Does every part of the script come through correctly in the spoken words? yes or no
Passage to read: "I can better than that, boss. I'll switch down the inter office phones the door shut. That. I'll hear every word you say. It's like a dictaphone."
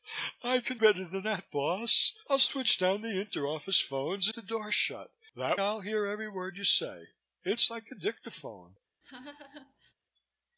yes